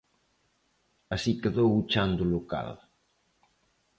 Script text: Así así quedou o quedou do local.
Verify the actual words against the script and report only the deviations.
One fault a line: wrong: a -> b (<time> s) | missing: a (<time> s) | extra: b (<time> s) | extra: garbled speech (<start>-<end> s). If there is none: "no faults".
missing: así (1.3 s)
wrong: quedou -> chan (1.9 s)